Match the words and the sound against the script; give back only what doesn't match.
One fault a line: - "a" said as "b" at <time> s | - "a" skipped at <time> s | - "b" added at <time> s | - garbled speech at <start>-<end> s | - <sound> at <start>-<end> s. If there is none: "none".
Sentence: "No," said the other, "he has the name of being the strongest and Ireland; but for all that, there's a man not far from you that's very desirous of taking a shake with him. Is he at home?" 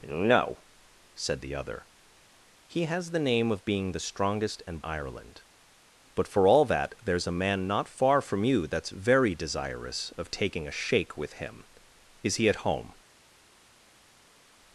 none